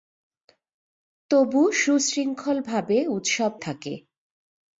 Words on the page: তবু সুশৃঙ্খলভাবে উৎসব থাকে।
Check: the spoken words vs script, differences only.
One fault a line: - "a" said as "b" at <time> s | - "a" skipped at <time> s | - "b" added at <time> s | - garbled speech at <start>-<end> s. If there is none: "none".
none